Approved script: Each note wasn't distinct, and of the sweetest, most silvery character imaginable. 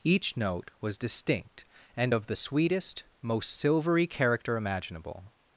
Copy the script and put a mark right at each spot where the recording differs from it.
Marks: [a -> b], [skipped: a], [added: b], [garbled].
Each note [wasn't -> was] distinct, and of the sweetest, most silvery character imaginable.